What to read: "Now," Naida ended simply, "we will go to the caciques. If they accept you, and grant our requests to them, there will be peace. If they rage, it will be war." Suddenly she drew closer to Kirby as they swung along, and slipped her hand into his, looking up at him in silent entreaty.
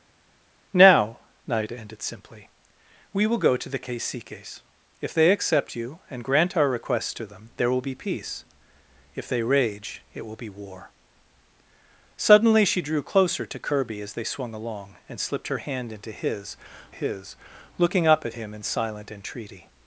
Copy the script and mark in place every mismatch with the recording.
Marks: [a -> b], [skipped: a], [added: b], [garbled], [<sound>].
"Now," Naida ended simply, "we will go to the caciques. If they accept you, and grant our requests to them, there will be peace. If they rage, it will be war." Suddenly she drew closer to Kirby as they swung along, and slipped her hand into his, [added: his] looking up at him in silent entreaty.